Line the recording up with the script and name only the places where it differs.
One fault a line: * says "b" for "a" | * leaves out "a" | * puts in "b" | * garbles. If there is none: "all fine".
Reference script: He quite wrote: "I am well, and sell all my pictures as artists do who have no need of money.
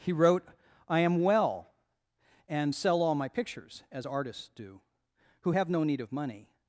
* leaves out "quite"